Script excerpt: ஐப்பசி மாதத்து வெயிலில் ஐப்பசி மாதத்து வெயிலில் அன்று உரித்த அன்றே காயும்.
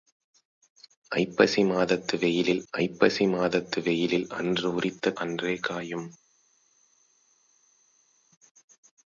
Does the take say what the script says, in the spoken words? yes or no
yes